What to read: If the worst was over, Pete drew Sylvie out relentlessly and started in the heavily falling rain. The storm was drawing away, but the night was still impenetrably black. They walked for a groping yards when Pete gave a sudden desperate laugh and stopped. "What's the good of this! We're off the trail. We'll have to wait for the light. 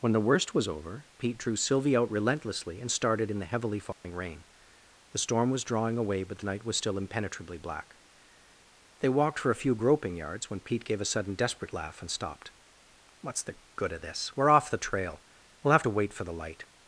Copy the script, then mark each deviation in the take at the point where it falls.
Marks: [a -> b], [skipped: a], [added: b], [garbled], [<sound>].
[If -> When] the worst was over, Pete drew Sylvie out relentlessly and started in the heavily falling [dropout] rain. The storm was drawing away, but the night was still impenetrably black. They walked for a [added: few] groping yards when Pete gave a sudden desperate laugh and stopped. "What's the good of this! We're off the trail. We'll have to wait for the light.